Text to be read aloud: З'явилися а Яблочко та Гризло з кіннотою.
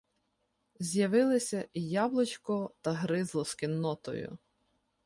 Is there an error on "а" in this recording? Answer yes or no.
yes